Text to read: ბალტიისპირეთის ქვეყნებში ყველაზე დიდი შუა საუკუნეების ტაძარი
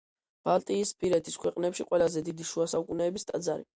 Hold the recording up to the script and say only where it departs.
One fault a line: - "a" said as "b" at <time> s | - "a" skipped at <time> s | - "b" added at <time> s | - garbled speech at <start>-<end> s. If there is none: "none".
none